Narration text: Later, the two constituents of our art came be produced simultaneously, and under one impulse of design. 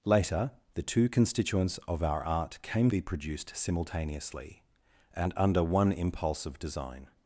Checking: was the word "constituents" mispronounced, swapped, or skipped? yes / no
no